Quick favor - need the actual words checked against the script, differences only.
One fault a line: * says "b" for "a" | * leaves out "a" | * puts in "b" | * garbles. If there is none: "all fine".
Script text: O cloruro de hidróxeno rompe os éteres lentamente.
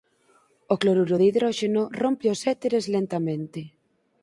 all fine